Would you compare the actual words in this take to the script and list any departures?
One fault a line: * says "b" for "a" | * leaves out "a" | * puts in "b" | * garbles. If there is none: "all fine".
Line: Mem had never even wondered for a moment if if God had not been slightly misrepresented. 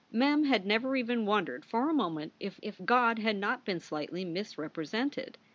all fine